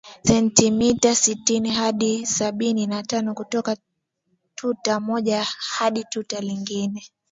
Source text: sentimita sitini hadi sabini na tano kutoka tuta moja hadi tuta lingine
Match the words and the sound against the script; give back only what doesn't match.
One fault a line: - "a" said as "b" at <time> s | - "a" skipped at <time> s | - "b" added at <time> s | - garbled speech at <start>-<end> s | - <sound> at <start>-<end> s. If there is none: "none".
none